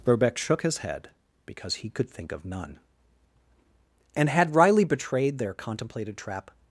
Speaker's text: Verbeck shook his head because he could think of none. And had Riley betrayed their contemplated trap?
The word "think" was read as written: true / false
true